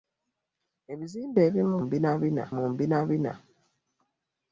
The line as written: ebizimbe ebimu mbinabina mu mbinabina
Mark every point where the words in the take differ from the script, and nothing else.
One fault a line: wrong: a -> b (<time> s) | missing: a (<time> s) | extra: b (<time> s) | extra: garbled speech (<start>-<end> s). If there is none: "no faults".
no faults